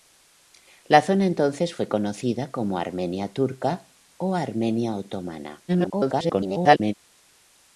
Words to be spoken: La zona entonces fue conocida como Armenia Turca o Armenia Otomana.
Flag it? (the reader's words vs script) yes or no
yes